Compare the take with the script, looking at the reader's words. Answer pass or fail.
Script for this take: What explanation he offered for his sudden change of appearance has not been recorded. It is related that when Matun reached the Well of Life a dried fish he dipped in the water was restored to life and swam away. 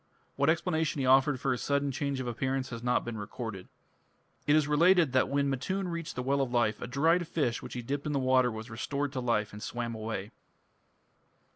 fail